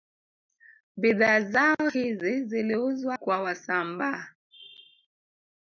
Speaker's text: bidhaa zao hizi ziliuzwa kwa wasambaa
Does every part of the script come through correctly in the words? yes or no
yes